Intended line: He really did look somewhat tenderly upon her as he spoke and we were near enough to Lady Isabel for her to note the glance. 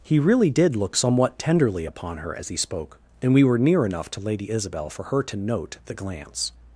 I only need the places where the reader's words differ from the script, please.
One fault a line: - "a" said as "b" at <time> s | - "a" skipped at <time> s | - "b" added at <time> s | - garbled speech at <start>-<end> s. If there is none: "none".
none